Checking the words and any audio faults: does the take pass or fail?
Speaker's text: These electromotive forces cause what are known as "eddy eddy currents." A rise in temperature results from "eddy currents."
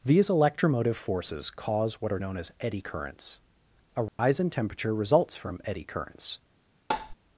fail